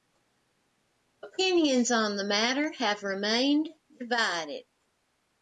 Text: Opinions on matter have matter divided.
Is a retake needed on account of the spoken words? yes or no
yes